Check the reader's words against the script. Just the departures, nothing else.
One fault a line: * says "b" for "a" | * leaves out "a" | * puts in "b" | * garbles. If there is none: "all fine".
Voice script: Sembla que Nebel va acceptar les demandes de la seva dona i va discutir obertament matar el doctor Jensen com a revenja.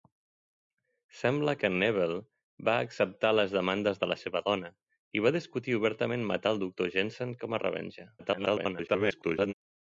* garbles